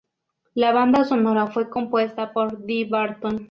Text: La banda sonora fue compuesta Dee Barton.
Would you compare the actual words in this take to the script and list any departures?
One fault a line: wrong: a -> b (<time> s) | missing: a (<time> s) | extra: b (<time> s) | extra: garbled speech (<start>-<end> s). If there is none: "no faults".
extra: por (2.3 s)